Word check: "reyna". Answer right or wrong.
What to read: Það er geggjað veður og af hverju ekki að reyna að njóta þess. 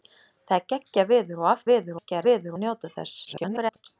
wrong